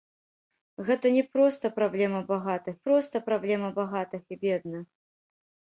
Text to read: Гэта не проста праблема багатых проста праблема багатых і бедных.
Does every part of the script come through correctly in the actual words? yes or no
yes